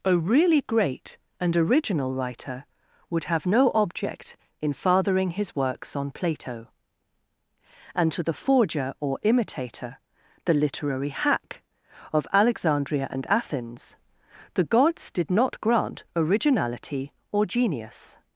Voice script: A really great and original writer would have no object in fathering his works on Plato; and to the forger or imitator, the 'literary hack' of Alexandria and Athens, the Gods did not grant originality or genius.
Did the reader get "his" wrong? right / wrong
right